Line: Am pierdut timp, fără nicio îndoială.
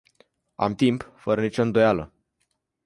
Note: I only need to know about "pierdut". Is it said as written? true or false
false